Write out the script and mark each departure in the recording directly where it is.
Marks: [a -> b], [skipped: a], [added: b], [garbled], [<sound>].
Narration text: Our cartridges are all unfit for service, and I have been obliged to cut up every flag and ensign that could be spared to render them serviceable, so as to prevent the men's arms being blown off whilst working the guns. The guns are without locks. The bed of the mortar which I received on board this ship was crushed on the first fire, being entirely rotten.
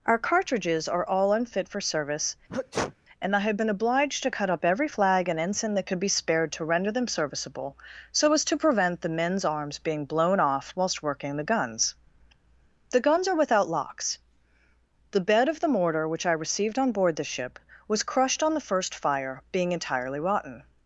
Our cartridges are all unfit for service, [sneeze] and I have been obliged to cut up every flag and ensign that could be spared to render them serviceable, so as to prevent the men's arms being blown off whilst working the guns. The guns are without locks. The bed of the mortar which I received on board [this -> the] ship was crushed on the first fire, being entirely rotten.